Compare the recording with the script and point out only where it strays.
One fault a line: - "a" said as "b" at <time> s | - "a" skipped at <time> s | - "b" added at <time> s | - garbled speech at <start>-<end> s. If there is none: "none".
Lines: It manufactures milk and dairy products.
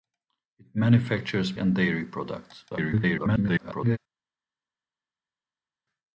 - "milk" skipped at 1.5 s
- garbled speech at 2.7-4.0 s